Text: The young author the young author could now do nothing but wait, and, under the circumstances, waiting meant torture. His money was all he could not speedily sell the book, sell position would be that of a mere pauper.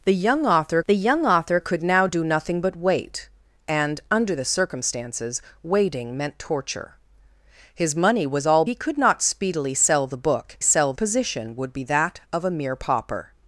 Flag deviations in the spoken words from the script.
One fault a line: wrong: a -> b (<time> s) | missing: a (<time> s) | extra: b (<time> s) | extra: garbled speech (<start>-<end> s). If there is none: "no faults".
no faults